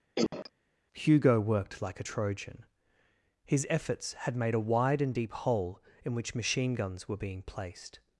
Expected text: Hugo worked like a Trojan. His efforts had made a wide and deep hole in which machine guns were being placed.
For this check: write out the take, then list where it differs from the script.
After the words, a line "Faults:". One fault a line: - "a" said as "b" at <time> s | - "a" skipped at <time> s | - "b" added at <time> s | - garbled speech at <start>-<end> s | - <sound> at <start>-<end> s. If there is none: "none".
Hugo worked like a Trojan. His efforts had made a wide and deep hole in which machine guns were being placed.
Faults:
- cough at 0.2-0.5 s